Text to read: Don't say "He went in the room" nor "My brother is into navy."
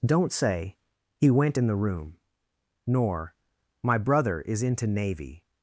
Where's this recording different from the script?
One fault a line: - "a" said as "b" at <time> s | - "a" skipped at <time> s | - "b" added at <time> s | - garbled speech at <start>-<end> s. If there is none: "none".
none